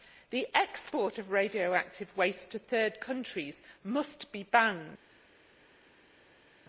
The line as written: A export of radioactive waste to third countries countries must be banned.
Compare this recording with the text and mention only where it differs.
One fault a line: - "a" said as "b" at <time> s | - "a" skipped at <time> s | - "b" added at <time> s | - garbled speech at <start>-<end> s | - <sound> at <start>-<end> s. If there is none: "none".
- "A" said as "The" at 0.3 s
- "countries" skipped at 3.6 s